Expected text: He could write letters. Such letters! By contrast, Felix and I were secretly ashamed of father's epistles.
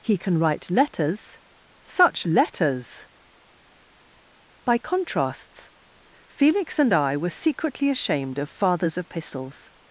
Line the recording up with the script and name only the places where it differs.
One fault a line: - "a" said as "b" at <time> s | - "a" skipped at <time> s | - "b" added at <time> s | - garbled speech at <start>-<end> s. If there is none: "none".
- "could" said as "can" at 0.2 s
- "contrast" said as "contrasts" at 4.8 s